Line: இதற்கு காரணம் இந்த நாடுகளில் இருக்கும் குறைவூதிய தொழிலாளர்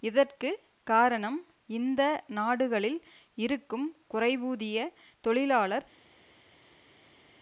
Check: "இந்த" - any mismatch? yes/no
no